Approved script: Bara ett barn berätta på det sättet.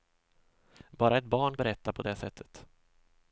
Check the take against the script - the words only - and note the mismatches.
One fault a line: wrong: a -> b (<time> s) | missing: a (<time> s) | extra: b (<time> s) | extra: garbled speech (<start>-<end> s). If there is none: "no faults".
no faults